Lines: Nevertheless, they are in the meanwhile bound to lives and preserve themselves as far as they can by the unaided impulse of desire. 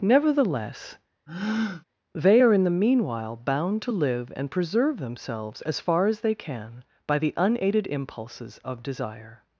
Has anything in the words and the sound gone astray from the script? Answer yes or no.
yes